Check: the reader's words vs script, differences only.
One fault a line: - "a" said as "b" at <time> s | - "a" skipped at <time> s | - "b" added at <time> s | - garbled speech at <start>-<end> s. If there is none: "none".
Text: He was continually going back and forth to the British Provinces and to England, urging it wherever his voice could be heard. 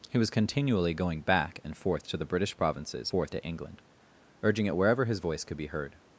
- "and" said as "forth" at 3.0 s